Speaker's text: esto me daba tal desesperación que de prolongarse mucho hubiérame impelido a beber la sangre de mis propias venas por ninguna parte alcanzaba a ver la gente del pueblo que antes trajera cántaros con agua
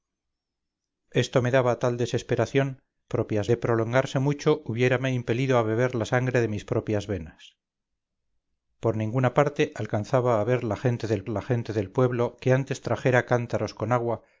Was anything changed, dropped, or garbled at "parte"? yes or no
no